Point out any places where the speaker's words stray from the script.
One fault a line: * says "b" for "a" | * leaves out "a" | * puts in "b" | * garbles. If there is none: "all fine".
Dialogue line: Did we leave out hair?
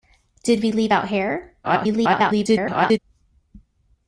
* garbles